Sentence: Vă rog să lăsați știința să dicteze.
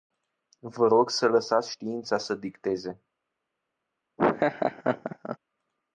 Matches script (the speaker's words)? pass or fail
pass